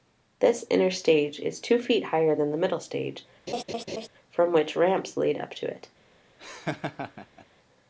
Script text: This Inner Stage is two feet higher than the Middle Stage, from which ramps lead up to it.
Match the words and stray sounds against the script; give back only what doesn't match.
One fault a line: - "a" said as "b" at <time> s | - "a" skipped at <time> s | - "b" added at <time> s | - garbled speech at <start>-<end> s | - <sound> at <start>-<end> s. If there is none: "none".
- laugh at 3.5-4.1 s
- laugh at 6.4-7.5 s